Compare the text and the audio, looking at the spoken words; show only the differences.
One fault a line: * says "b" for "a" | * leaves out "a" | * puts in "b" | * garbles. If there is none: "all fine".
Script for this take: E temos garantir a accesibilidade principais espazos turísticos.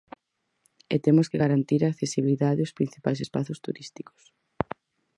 * puts in "que"
* puts in "aos"